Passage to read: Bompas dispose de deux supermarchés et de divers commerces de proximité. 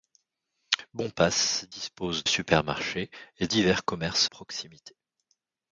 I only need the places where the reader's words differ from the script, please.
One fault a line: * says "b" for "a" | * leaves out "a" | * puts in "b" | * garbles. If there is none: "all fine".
* leaves out "de deux"
* leaves out "de"
* leaves out "de"